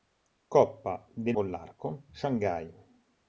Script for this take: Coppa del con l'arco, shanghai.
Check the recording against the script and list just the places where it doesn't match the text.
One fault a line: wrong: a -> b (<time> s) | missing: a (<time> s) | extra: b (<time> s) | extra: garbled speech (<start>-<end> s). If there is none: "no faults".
no faults